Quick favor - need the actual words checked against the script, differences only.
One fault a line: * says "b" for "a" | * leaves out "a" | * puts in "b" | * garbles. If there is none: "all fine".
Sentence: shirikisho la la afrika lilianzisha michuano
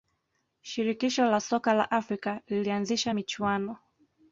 * puts in "soka"